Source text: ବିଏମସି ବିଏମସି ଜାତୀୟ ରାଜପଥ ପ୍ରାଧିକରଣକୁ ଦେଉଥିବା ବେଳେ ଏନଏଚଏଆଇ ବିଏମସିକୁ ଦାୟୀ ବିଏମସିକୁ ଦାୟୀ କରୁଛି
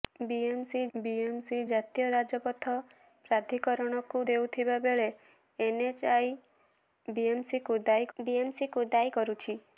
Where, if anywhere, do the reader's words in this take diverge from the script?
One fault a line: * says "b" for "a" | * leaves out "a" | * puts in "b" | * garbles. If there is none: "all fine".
all fine